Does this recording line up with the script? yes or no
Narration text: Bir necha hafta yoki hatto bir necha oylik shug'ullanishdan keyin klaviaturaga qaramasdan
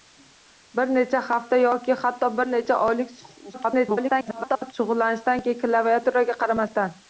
no